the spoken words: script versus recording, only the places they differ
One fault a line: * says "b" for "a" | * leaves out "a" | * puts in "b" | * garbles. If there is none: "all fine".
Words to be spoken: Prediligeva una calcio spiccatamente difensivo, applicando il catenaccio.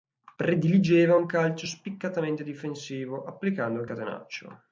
* says "un" for "una"